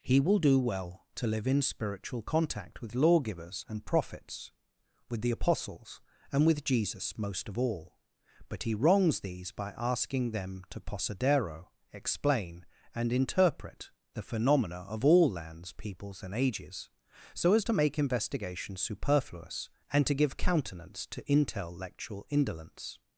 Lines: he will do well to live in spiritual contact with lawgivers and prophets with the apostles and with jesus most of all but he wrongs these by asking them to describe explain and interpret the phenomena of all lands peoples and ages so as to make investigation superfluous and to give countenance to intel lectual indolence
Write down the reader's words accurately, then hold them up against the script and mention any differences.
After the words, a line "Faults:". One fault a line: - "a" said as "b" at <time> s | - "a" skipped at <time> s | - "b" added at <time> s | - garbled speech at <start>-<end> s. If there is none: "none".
he will do well to live in spiritual contact with lawgivers and prophets with the apostles and with jesus most of all but he wrongs these by asking them to posadero explain and interpret the phenomena of all lands peoples and ages so as to make investigation superfluous and to give countenance to intel lectual indolence
Faults:
- "describe" said as "posadero" at 10.8 s